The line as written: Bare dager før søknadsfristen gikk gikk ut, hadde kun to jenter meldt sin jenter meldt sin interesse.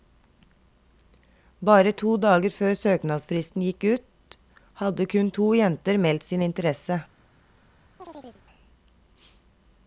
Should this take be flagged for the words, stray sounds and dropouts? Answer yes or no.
yes